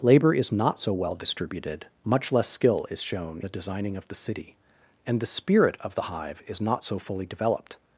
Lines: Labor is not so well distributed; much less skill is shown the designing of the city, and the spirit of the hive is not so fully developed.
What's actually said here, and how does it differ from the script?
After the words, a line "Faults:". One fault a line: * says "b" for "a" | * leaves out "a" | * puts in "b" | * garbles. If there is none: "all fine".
Labor is not so well distributed; much less skill is shown the designing of the city, and the spirit of the hive is not so fully developed.
Faults:
all fine